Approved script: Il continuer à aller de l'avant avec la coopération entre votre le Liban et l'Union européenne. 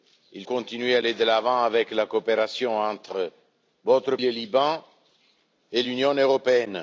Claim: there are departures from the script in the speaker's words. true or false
false